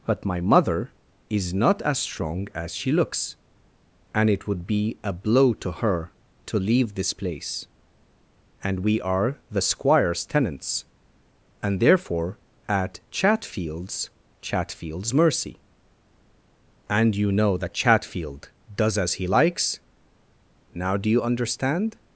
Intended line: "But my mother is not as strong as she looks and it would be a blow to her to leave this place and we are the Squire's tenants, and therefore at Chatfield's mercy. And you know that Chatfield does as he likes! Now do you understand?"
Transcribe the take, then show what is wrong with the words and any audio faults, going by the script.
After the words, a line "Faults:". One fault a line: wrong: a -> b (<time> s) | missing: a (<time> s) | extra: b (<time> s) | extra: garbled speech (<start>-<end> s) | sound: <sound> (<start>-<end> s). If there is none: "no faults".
"But my mother is not as strong as she looks and it would be a blow to her to leave this place and we are the Squire's tenants, and therefore at Chatfield's Chatfield's mercy. And you know that Chatfield does as he likes! Now do you understand?"
Faults:
extra: Chatfield's (14.4 s)